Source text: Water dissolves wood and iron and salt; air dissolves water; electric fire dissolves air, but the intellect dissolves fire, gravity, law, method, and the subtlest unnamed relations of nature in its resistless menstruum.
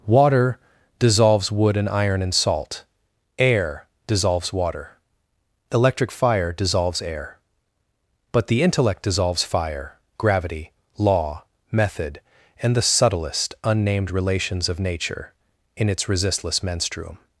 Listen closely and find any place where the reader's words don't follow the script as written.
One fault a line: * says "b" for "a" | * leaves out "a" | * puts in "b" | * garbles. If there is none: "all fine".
all fine